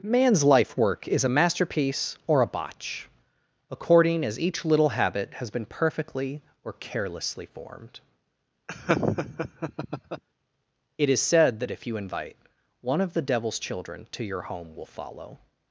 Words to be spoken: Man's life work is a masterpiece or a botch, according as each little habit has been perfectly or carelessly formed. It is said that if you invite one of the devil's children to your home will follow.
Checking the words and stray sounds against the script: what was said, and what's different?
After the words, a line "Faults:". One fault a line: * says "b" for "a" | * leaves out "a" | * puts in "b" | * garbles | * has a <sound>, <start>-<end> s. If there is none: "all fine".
Man's life work is a masterpiece or a botch, according as each little habit has been perfectly or carelessly formed. It is said that if you invite one of the devil's children to your home will follow.
Faults:
* has a laugh, 8.7-10.2 s